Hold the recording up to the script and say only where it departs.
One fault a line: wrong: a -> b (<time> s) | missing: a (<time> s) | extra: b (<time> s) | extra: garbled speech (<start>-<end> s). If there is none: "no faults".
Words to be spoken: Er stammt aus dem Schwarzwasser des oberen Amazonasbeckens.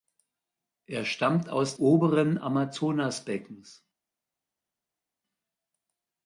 missing: dem Schwarzwasser des (1.8 s)